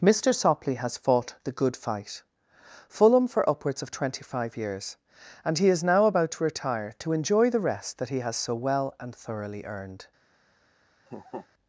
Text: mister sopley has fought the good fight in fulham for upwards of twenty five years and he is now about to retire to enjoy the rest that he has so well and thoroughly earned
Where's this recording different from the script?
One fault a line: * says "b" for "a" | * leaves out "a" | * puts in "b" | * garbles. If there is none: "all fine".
* leaves out "in"